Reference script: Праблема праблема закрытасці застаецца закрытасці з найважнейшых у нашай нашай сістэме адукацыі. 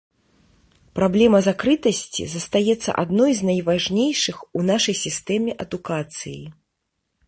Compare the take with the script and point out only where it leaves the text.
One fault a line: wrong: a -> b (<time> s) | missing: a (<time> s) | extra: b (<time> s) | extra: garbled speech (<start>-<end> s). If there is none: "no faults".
missing: праблема (1.4 s)
wrong: закрытасці -> адной (3.0 s)
missing: нашай (4.9 s)